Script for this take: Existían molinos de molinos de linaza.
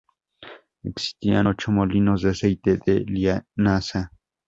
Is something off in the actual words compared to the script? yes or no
yes